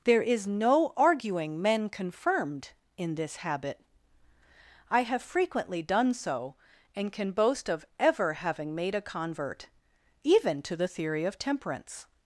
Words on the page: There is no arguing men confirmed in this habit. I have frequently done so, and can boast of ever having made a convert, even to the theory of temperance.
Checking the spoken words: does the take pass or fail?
pass